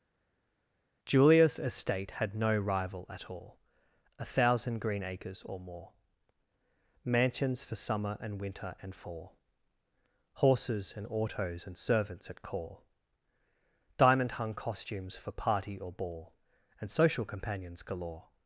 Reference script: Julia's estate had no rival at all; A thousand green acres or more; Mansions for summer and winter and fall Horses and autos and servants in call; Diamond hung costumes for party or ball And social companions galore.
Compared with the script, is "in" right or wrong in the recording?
wrong